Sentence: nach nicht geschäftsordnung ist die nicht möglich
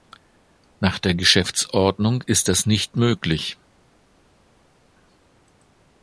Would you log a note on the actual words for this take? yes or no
yes